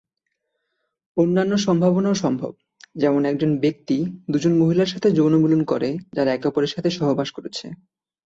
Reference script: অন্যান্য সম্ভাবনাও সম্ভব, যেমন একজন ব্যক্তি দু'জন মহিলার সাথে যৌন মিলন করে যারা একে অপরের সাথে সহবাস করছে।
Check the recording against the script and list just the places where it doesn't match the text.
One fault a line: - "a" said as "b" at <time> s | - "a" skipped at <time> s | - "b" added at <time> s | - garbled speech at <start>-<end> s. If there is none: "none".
none